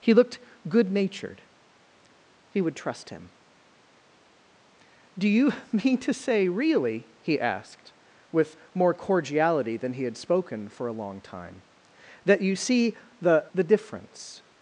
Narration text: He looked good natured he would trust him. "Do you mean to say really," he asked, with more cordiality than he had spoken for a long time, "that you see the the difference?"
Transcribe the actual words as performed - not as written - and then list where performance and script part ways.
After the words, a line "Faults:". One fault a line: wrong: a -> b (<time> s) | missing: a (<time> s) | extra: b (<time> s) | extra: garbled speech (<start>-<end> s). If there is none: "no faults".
He looked good natured he would trust him. "Do you mean to say really," he asked, with more cordiality than he had spoken for a long time, "that you see the the difference?"
Faults:
no faults